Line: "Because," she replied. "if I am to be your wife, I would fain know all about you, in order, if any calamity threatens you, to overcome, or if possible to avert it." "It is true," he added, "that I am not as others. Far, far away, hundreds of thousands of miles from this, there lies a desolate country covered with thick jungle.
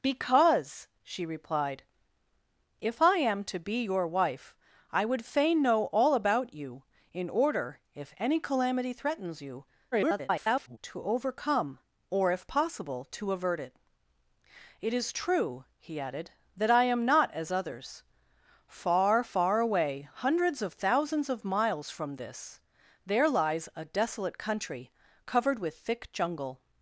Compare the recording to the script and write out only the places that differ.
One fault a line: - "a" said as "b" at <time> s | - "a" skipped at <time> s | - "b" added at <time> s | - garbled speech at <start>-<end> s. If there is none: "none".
- garbled speech at 9.9-10.8 s